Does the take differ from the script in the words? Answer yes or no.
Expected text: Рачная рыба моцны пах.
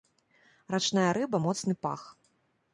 no